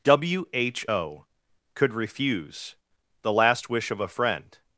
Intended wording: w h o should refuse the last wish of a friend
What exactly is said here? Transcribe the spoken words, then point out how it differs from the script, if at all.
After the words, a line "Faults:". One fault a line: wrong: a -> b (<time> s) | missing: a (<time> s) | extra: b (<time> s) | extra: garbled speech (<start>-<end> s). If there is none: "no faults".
w h o could refuse the last wish of a friend
Faults:
wrong: should -> could (1.7 s)